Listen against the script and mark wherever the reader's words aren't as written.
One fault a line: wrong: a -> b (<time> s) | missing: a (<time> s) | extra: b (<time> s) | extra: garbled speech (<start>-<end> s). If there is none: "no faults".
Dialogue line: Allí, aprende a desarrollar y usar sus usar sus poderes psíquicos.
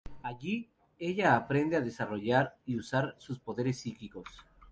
extra: ella (1.0 s)
missing: usar sus (3.4 s)